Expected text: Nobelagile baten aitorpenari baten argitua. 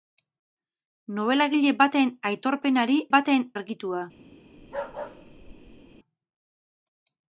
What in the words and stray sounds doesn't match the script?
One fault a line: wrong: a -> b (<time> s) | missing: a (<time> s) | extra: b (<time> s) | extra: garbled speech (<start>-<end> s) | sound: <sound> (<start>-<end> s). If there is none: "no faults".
sound: bark (4.6-6.0 s)